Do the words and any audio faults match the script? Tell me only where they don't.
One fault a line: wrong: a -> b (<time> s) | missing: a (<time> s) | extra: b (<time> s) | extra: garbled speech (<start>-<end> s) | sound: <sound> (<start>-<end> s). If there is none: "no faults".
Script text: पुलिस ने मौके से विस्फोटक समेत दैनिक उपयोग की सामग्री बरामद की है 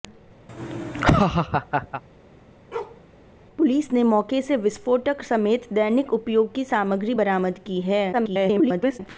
sound: laugh (0.5-2.0 s)
sound: bark (2.7-3.0 s)
extra: garbled speech (8.1-9.0 s)